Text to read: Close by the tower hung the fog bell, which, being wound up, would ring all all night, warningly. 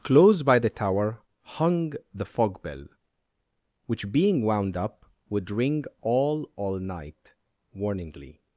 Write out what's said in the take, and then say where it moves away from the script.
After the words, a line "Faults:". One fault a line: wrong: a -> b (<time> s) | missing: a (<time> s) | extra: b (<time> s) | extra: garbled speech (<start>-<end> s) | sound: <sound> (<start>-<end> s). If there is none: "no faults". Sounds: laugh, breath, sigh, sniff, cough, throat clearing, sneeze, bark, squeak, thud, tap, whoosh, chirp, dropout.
Close by the tower hung the fog bell, which, being wound up, would ring all all night, warningly.
Faults:
no faults